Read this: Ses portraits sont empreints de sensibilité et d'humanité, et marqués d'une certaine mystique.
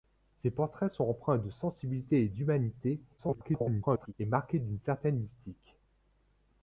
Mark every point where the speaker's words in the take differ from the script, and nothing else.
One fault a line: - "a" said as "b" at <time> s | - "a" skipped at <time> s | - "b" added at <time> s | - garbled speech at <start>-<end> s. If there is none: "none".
- garbled speech at 3.2-4.1 s